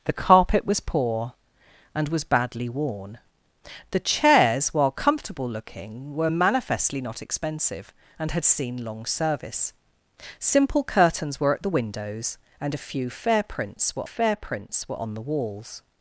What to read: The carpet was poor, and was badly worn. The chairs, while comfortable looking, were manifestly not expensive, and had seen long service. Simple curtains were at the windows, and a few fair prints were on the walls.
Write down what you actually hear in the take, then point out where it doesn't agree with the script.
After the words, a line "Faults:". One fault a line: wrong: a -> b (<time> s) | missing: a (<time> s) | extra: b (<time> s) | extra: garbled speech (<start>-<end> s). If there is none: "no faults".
The carpet was poor, and was badly worn. The chairs, while comfortable looking, were manifestly not expensive, and had seen long service. Simple curtains were at the windows, and a few fair prints were fair prints were on the walls.
Faults:
extra: fair prints were (14.0 s)